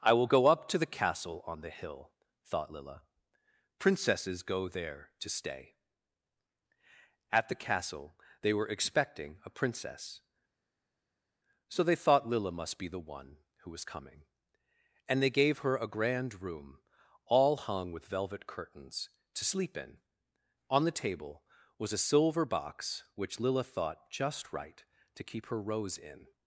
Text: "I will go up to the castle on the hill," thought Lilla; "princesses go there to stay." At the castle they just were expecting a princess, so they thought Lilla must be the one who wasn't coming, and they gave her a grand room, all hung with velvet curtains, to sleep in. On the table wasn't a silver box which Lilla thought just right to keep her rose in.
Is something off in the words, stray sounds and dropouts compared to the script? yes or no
yes